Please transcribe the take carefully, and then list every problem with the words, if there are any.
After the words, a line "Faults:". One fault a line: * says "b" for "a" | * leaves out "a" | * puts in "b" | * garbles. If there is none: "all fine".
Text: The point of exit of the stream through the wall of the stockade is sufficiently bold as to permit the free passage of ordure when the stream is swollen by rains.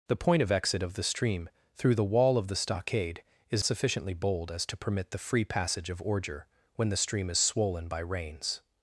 The point of exit of the stream through the wall of the stockade is sufficiently bold as to permit the free passage of ordure when the stream is swollen by rains.
Faults:
all fine